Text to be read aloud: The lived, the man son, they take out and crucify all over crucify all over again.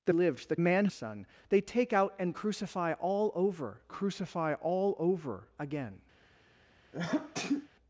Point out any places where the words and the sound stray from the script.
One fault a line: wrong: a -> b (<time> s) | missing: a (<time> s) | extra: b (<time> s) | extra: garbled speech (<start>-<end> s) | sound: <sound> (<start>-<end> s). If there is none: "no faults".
sound: sneeze (6.9-7.7 s)